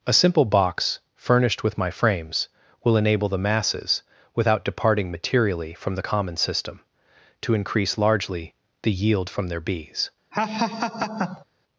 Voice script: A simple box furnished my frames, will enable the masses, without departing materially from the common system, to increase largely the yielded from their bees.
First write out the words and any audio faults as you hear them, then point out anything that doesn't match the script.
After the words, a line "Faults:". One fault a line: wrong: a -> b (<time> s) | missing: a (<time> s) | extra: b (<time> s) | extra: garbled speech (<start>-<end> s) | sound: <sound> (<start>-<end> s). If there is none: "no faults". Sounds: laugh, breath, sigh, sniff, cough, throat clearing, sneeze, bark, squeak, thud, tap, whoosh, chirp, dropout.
A simple box furnished with my frames, will enable the masses, without departing materially from the common system, to increase largely the yield from their bees.
Faults:
extra: with (1.6 s)
wrong: yielded -> yield (8.9 s)
sound: laugh (10.3-11.5 s)